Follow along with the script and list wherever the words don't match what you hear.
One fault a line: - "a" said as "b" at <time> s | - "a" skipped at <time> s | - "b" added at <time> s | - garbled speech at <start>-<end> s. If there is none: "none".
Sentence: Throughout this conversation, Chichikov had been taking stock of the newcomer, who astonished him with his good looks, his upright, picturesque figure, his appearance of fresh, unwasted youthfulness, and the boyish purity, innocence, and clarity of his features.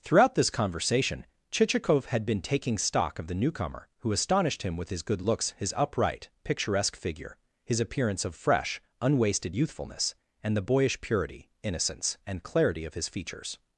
none